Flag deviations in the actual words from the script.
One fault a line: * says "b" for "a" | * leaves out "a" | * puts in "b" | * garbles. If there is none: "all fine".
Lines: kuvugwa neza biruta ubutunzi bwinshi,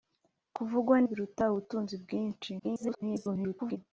* leaves out "neza"
* garbles